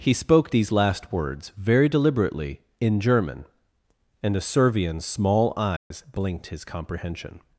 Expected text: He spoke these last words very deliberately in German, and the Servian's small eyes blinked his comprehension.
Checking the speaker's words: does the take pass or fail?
fail